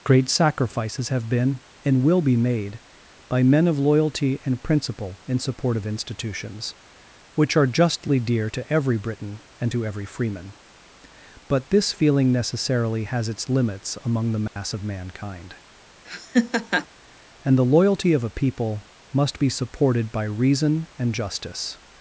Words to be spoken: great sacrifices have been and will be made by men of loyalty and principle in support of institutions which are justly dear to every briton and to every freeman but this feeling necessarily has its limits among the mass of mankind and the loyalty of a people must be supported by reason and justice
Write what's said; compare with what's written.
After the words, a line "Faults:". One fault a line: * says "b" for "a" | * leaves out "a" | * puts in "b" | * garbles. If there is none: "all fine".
great sacrifices have been and will be made by men of loyalty and principle in support of institutions which are justly dear to every briton and to every freeman but this feeling necessarily has its limits among the mass of mankind and the loyalty of a people must be supported by reason and justice
Faults:
all fine